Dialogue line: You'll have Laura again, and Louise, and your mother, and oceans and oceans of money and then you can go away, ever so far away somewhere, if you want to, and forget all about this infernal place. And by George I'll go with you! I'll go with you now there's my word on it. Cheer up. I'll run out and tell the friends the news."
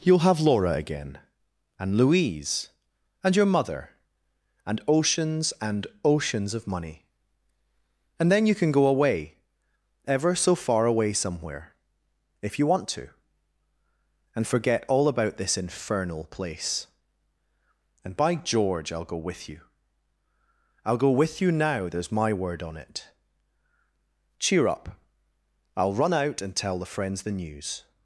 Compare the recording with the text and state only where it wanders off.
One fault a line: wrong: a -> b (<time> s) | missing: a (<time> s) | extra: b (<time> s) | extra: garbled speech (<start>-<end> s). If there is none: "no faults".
no faults